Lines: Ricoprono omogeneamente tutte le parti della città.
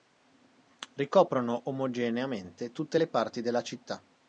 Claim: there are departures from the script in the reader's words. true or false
false